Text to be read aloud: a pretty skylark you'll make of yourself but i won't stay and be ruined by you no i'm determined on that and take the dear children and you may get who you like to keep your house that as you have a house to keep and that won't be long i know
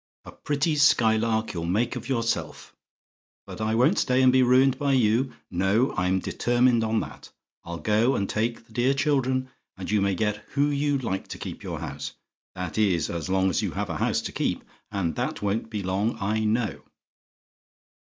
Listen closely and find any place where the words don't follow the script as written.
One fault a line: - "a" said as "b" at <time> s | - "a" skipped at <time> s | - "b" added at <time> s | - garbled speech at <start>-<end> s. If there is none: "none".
- "i'll go" added at 7.6 s
- "is as long" added at 12.8 s